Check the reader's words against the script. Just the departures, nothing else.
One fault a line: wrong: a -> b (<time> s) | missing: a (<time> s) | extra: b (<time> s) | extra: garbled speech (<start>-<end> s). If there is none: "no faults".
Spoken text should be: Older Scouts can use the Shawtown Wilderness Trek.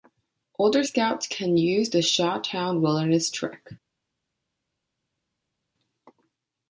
no faults